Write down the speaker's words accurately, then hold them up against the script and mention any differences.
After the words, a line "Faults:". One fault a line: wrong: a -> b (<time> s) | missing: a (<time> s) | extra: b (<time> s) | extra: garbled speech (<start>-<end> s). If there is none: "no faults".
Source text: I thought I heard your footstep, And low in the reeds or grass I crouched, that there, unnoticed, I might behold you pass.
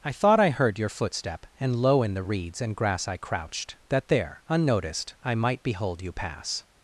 I thought I heard your footstep, And low in the reeds and grass I crouched, that there, unnoticed, I might behold you pass.
Faults:
wrong: or -> and (2.6 s)